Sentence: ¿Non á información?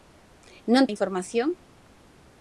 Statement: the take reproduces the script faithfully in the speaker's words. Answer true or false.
true